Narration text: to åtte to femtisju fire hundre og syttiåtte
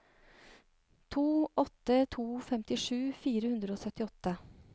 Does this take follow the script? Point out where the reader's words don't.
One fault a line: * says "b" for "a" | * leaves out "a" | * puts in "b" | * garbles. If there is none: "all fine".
all fine